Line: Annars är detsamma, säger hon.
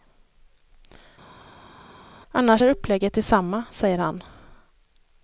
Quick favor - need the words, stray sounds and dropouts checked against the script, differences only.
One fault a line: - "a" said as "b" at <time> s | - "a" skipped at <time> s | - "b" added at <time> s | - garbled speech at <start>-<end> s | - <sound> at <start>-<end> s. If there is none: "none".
- "upplägget" added at 2.7 s
- "hon" said as "han" at 4.0 s